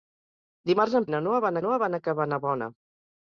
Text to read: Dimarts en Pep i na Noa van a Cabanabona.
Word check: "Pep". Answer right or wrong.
wrong